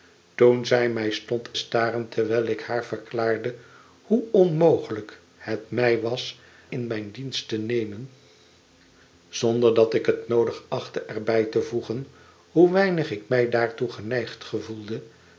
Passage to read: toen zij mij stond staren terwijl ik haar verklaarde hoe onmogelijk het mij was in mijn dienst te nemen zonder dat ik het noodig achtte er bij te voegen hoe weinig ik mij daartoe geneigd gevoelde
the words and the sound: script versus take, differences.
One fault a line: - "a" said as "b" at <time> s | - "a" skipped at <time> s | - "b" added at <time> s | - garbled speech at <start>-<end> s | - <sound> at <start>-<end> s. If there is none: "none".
none